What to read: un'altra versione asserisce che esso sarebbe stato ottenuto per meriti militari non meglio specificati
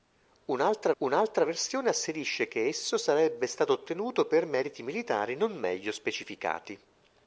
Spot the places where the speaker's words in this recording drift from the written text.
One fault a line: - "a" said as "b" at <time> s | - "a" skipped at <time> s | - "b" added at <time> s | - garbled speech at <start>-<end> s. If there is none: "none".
- "un'altra" added at 1.0 s